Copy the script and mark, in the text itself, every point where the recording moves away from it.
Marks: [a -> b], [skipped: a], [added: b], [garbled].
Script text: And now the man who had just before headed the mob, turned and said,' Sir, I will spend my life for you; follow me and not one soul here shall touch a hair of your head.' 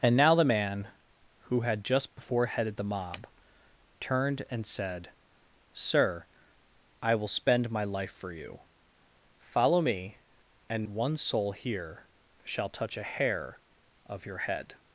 And now the man who had just before headed the mob, turned and said,' Sir, I will spend my life for you; follow me and [skipped: not] one soul here shall touch a hair of your head.'